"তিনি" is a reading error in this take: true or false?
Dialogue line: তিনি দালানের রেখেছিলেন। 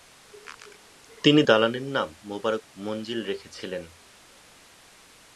false